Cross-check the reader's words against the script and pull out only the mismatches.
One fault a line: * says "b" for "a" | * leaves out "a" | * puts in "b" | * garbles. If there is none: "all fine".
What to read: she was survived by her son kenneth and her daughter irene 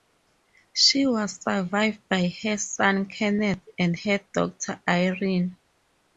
all fine